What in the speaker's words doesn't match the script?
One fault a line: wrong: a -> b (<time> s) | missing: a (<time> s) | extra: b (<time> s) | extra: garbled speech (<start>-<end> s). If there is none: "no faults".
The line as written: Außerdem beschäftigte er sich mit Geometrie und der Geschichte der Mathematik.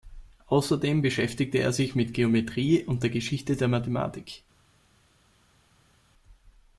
no faults